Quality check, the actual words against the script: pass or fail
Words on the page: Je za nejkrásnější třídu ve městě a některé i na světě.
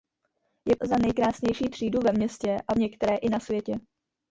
pass